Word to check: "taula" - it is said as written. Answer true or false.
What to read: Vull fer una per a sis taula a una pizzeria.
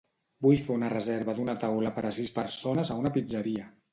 false